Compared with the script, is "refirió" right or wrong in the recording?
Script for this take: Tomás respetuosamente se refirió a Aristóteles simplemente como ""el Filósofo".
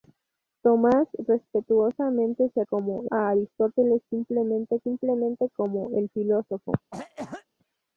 wrong